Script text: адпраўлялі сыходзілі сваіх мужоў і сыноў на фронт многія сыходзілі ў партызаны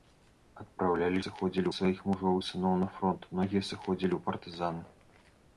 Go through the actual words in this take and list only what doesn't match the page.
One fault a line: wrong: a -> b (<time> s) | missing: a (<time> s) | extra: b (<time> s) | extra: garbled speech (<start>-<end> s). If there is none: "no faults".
no faults